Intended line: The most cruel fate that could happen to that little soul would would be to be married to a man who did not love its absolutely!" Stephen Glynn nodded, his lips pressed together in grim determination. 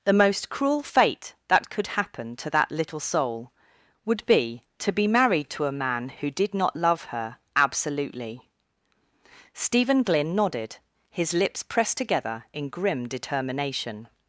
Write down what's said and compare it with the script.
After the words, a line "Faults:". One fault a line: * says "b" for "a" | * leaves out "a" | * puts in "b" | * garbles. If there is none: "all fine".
The most cruel fate that could happen to that little soul would be to be married to a man who did not love her absolutely!" Stephen Glynn nodded, his lips pressed together in grim determination.
Faults:
* leaves out "would"
* says "her" for "its"